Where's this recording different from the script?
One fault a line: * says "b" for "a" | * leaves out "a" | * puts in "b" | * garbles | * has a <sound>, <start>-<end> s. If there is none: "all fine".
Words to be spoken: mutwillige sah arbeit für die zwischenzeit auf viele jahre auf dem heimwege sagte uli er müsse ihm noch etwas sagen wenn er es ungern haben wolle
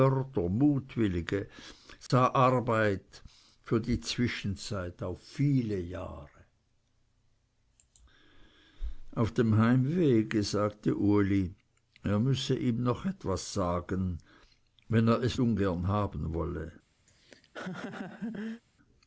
* has a dropout, 2.1-2.1 s
* has a laugh, 17.1-18.6 s